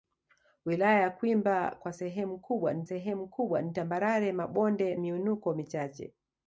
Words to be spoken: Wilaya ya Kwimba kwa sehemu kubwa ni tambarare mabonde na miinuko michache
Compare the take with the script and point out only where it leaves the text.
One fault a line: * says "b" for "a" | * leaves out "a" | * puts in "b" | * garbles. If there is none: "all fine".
* puts in "sehemu kubwa ni"
* leaves out "na"